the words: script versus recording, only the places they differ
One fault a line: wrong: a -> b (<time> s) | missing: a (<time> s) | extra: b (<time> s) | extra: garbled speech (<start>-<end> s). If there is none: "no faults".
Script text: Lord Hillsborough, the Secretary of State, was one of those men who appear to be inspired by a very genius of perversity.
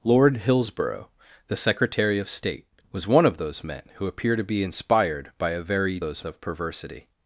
wrong: genius -> those (6.0 s)